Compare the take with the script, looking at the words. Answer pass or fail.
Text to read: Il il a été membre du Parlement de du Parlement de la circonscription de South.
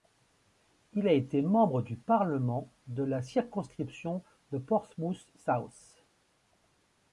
fail